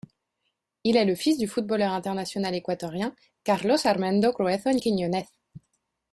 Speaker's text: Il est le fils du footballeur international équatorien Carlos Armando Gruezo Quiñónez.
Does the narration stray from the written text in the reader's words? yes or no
no